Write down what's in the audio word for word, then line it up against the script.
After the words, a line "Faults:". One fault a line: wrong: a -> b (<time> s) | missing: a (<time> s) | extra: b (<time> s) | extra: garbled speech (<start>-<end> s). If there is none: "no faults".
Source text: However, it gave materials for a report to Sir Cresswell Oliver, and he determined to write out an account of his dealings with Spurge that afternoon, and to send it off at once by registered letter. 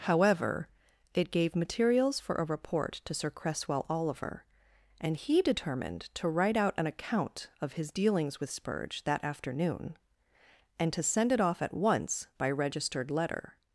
However, it gave materials for a report to Sir Cresswell Oliver, and he determined to write out an account of his dealings with Spurge that afternoon, and to send it off at once by registered letter.
Faults:
no faults